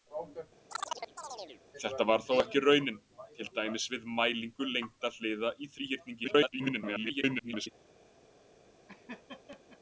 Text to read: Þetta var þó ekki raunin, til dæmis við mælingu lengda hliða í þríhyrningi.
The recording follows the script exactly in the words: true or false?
false